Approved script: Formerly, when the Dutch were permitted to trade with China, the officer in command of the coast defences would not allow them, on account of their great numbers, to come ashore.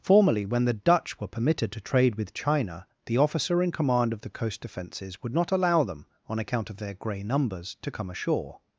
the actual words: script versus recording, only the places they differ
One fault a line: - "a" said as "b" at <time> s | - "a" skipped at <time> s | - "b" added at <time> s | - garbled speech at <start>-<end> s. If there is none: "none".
- "great" said as "grey" at 6.9 s